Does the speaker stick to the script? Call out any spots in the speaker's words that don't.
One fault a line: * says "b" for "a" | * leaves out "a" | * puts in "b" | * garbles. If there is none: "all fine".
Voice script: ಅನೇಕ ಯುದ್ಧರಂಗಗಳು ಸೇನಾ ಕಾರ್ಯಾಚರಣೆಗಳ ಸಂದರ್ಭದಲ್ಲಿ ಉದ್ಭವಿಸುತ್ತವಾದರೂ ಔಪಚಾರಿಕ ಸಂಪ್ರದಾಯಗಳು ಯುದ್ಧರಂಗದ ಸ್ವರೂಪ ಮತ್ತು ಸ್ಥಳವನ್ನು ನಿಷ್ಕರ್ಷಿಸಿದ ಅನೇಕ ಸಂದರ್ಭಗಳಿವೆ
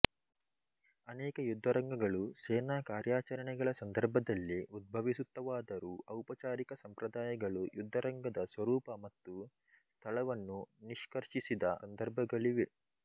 * leaves out "ಅನೇಕ"